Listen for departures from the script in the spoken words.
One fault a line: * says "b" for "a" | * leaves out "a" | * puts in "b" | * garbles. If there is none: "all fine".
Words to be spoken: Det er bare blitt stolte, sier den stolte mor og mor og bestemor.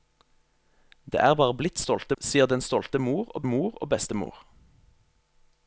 all fine